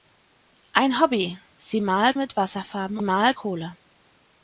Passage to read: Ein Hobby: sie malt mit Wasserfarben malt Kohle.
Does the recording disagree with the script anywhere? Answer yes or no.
no